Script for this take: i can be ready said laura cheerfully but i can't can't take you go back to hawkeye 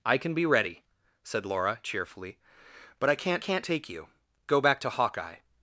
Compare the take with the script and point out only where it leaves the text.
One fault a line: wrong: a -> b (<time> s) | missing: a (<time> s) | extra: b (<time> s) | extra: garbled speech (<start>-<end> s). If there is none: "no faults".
no faults